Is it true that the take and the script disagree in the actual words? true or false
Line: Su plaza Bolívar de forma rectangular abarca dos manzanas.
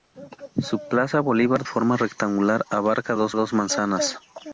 true